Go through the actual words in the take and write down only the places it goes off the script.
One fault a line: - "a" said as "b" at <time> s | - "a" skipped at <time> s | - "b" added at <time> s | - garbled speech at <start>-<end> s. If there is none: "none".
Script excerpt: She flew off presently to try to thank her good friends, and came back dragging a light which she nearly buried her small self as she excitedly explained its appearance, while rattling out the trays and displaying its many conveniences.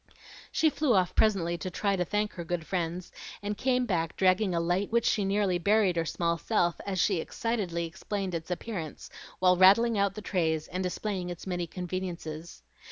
none